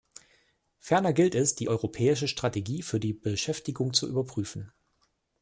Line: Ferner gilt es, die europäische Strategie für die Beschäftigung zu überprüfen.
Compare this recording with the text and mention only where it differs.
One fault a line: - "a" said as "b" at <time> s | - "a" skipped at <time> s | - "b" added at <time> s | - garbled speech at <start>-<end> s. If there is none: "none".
none